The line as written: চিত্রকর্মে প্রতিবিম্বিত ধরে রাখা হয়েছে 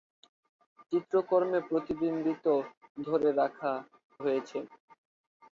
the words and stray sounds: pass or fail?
pass